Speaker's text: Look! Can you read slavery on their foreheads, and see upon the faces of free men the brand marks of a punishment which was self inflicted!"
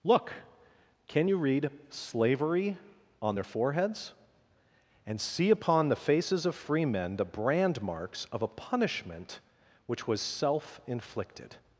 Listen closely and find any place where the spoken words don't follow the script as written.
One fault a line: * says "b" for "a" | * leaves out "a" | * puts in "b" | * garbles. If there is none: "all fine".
all fine